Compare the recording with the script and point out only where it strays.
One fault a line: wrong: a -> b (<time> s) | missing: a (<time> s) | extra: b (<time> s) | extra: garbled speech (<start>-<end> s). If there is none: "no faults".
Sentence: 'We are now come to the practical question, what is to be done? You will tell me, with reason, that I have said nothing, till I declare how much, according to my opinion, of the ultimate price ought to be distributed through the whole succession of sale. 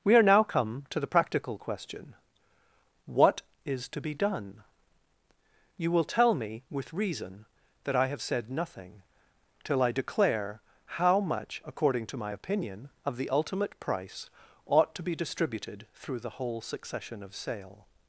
no faults